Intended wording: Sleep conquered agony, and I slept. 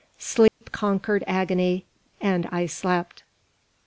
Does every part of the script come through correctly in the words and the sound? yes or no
no